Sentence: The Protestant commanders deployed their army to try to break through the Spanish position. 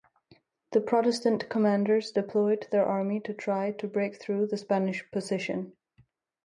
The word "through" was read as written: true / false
true